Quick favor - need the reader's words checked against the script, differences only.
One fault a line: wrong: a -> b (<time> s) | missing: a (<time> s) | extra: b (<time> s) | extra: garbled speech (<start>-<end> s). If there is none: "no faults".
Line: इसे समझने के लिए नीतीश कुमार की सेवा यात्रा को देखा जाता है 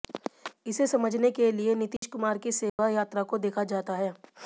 no faults